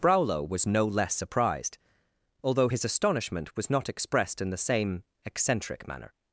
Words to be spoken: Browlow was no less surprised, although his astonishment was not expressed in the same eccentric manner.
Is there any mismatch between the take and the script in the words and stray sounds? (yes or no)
no